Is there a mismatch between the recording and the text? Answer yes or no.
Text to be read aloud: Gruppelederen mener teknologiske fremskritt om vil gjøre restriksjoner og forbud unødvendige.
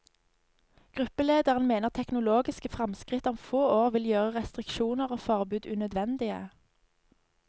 yes